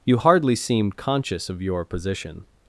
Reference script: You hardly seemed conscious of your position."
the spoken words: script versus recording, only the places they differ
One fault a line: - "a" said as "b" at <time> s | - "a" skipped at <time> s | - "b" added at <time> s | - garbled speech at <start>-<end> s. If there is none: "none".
none